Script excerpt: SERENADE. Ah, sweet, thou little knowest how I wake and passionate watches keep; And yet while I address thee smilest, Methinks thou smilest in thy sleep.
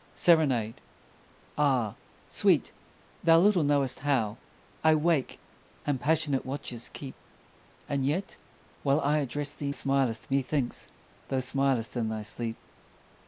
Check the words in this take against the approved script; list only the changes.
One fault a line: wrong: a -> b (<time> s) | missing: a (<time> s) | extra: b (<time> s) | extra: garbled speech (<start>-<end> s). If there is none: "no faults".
no faults